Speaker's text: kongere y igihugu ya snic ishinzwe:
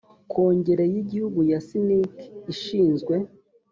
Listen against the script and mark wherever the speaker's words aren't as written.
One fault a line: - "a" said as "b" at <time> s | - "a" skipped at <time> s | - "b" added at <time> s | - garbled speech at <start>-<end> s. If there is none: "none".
none